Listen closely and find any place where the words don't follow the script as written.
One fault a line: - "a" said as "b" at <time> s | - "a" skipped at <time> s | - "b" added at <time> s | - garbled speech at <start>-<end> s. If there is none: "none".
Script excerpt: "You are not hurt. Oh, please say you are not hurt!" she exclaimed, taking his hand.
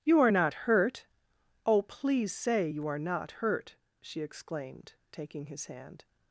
none